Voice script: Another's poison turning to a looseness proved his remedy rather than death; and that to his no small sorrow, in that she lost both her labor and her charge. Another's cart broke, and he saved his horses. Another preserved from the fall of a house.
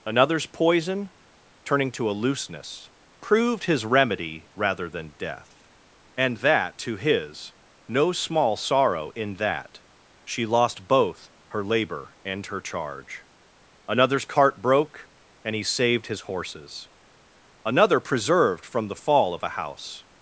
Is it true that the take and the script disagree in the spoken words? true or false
false